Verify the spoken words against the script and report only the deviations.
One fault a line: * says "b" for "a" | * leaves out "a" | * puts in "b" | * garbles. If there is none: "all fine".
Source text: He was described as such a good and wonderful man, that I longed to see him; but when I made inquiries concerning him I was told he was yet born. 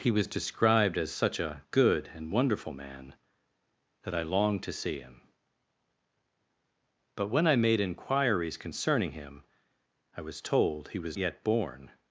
all fine